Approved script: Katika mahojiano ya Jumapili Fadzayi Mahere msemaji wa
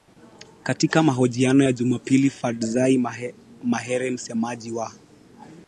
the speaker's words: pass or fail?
pass